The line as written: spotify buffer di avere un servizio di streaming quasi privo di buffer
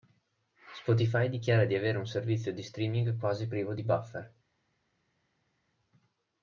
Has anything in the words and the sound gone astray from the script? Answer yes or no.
yes